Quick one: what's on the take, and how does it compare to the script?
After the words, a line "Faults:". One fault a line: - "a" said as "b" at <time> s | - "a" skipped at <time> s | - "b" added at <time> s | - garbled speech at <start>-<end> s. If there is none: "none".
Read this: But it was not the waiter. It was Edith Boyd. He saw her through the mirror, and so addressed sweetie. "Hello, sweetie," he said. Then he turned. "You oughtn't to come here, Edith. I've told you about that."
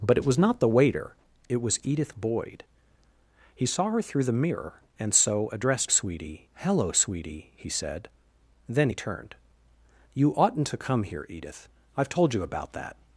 But it was not the waiter. It was Edith Boyd. He saw her through the mirror, and so addressed sweetie. "Hello, sweetie," he said. Then he turned. "You oughtn't to come here, Edith. I've told you about that."
Faults:
none